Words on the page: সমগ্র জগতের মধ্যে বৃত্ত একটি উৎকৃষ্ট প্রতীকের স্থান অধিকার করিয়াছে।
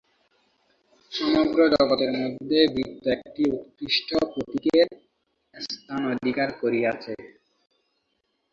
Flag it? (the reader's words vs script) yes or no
no